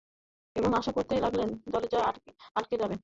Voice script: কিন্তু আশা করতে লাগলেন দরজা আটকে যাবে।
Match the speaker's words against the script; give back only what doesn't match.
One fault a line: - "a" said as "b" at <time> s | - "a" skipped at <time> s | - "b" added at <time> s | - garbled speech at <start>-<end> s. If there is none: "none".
- "কিন্তু" said as "এবং" at 0.6 s